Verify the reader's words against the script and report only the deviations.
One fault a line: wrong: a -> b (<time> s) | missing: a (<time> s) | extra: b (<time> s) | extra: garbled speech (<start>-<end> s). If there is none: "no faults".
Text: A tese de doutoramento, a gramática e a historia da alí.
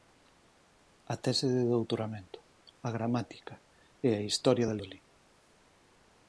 no faults